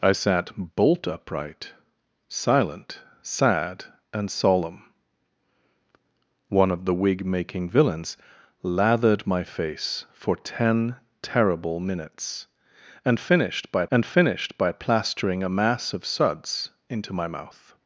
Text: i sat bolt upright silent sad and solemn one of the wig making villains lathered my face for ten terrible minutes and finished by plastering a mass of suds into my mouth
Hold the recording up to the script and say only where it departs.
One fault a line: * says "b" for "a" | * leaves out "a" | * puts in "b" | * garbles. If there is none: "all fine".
* puts in "and finished by"